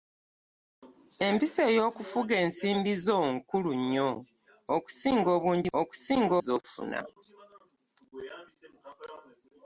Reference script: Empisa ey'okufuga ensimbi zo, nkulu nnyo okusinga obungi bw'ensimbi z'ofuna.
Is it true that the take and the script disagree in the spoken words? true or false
true